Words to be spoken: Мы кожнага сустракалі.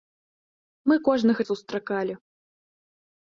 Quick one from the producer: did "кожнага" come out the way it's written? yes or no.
yes